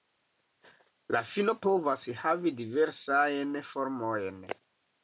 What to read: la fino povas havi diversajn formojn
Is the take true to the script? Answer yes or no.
yes